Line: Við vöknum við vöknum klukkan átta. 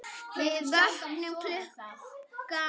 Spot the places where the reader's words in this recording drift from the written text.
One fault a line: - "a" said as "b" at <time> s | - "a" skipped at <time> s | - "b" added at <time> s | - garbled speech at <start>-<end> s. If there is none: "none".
- "við vöknum" skipped at 1.4 s